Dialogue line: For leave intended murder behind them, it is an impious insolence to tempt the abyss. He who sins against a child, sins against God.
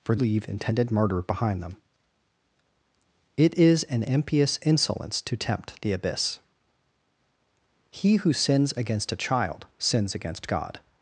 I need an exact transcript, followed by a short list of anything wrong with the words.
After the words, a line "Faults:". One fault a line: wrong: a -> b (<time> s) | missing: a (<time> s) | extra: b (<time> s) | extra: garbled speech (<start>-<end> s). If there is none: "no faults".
For leave intended murder behind them, it is an impious insolence to tempt the abyss. He who sins against a child, sins against God.
Faults:
no faults